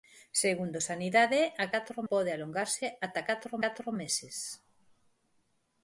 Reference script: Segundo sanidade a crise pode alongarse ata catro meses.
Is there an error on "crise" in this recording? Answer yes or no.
yes